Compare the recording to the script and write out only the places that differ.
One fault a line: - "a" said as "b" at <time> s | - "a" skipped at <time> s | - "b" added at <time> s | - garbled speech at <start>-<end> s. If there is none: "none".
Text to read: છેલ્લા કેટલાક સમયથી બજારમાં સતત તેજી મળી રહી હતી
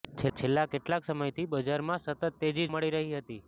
none